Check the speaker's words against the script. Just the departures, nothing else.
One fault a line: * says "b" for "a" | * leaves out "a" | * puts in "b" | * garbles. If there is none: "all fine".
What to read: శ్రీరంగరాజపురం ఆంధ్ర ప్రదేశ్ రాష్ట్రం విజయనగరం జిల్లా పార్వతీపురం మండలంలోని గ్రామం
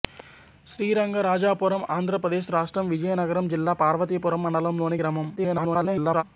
* garbles